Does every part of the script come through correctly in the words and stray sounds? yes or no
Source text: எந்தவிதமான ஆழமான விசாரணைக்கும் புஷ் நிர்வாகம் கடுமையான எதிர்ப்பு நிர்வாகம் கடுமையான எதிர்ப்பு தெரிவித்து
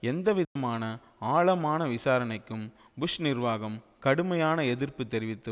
no